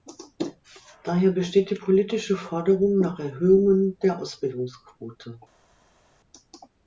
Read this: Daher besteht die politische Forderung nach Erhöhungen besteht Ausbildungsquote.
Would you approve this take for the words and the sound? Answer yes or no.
no